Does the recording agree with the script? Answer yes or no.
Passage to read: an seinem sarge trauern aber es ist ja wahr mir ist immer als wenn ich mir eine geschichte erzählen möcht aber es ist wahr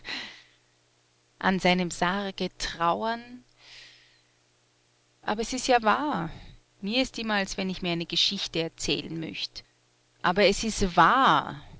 yes